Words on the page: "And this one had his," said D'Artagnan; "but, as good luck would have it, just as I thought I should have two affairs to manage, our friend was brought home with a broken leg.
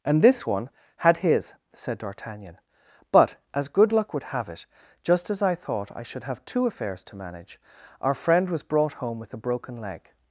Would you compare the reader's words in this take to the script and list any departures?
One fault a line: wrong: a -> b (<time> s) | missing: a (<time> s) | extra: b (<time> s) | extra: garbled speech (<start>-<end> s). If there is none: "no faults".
no faults